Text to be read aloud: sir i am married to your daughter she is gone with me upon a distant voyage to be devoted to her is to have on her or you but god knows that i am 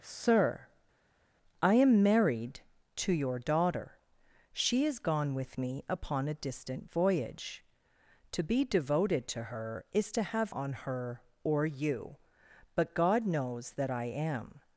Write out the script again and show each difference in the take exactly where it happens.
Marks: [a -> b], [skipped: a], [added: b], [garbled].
sir i am married to your daughter she is gone with me upon a distant voyage to be devoted to her is to have on her or you but god knows that i am